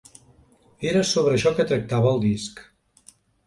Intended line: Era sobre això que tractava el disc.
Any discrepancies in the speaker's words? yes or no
no